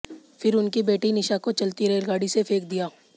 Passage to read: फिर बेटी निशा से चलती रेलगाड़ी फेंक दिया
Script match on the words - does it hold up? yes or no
no